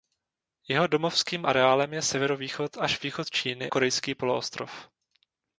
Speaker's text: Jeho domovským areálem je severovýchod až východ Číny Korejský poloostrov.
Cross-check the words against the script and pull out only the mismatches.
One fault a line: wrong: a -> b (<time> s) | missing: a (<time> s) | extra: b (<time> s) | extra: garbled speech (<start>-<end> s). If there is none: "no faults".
no faults